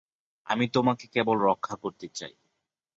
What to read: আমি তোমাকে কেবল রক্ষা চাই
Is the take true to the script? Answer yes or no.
no